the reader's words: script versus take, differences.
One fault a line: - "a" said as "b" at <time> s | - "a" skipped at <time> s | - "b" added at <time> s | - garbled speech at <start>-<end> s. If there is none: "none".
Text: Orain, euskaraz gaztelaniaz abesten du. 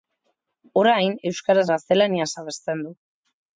none